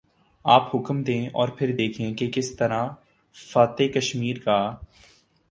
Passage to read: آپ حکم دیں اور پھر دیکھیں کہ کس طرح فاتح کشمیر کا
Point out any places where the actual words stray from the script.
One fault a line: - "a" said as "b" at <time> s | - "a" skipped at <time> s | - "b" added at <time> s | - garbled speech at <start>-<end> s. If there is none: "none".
none